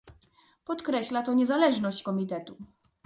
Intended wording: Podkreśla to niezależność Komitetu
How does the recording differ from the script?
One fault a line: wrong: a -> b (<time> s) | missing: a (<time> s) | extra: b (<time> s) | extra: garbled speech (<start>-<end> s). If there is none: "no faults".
no faults